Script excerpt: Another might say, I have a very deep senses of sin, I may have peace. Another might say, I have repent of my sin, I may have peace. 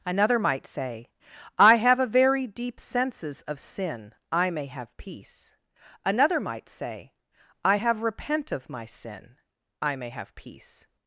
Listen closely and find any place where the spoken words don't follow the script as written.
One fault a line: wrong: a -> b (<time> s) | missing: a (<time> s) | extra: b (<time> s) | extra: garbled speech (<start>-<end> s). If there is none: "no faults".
no faults